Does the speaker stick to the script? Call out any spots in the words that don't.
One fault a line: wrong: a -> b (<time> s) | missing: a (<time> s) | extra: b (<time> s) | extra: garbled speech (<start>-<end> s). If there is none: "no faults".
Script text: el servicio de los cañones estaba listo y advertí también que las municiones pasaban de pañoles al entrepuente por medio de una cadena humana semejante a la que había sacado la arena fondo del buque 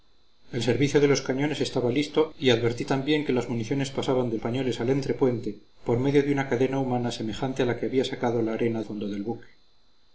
no faults